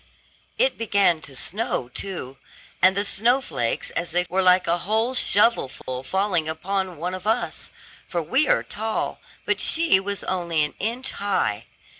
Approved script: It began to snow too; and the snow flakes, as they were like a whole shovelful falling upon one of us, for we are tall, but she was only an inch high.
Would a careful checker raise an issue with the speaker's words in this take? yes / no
no